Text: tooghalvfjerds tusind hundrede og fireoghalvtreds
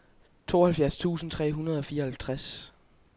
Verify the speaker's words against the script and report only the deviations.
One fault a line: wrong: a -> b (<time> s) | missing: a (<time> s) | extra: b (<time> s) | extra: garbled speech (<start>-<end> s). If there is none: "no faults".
extra: tre (1.3 s)